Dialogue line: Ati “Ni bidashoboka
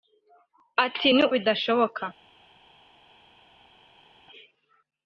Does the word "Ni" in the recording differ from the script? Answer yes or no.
no